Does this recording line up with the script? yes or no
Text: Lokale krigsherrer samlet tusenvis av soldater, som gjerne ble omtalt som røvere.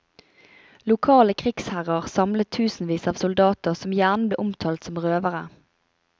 yes